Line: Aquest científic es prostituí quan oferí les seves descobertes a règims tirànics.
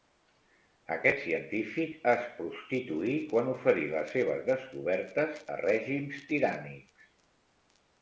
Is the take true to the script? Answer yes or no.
yes